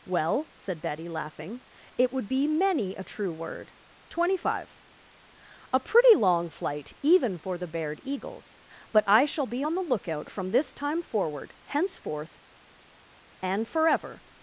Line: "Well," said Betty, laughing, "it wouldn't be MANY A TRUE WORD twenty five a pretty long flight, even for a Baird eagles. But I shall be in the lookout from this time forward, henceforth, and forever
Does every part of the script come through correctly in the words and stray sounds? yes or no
no